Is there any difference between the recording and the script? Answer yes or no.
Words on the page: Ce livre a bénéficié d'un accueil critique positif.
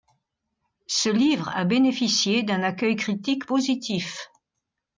no